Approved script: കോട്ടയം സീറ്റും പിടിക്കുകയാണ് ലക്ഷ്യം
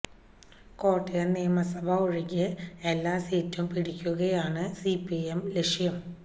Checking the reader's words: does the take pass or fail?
fail